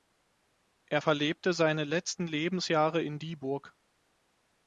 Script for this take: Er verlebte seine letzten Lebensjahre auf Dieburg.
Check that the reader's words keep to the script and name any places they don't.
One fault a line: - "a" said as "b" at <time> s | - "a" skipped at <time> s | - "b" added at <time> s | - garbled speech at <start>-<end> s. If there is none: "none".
- "auf" said as "in" at 3.0 s